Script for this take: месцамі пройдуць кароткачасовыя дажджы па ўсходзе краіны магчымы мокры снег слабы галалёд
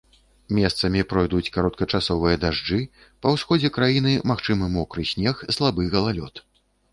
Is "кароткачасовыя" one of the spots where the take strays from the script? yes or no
no